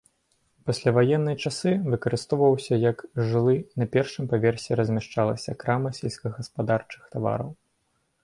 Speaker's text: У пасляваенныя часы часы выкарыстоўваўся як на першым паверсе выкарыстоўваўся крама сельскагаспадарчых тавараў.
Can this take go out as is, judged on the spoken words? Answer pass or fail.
fail